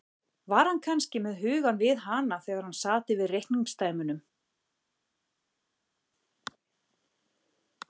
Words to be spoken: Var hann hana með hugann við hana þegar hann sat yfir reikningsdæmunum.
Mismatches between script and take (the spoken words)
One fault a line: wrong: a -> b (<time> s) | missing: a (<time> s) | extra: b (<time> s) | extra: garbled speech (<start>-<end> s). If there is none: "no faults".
wrong: hana -> kannski (0.8 s)